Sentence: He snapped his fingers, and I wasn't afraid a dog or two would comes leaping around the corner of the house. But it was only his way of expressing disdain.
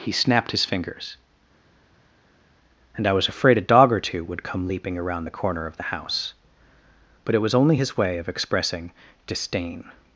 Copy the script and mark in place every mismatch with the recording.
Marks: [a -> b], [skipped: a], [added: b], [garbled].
He snapped his fingers, and I [wasn't -> was] afraid a dog or two would [comes -> come] leaping around the corner of the house. But it was only his way of expressing disdain.